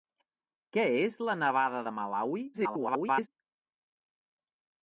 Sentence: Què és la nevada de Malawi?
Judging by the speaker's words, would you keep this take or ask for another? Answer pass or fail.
fail